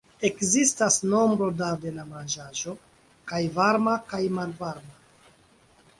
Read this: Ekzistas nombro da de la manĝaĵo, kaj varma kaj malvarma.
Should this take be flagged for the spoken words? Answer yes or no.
no